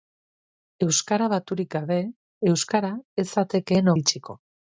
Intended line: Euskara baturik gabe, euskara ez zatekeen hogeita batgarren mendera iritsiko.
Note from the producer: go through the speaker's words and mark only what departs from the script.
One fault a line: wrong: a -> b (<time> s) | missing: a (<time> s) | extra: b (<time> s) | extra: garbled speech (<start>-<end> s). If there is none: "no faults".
missing: hogeita batgarren mendera (3.9 s)